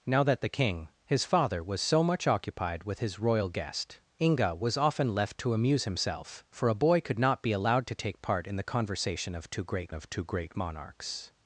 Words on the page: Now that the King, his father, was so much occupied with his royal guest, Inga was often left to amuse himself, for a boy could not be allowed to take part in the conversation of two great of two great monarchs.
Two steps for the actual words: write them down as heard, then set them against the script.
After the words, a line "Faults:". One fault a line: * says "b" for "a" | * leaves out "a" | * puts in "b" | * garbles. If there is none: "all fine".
Now that the King, his father, was so much occupied with his royal guest, Inga was often left to amuse himself, for a boy could not be allowed to take part in the conversation of two great of two great monarchs.
Faults:
all fine